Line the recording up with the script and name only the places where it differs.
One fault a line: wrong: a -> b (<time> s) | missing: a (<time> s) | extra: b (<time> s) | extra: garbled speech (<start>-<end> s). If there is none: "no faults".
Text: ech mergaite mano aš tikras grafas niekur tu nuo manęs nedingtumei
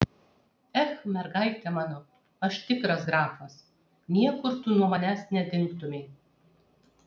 no faults